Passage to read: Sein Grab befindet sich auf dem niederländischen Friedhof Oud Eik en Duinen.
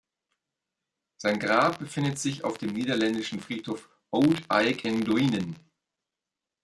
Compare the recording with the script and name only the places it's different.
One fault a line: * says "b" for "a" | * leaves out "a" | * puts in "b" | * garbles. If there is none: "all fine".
all fine